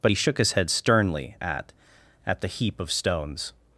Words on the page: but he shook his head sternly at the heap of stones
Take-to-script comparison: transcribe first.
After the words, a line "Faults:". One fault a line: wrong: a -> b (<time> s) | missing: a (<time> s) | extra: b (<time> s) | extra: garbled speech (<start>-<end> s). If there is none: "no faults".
but he shook his head sternly at at the heap of stones
Faults:
extra: at (2.2 s)